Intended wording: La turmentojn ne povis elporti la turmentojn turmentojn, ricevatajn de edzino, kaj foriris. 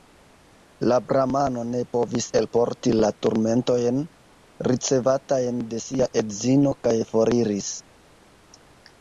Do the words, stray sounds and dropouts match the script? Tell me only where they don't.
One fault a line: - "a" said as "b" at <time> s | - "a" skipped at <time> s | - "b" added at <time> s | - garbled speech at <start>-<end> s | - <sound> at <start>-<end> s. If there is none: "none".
- "turmentojn" said as "bramano" at 1.1 s
- "turmentojn" skipped at 4.0 s
- "sia" added at 5.9 s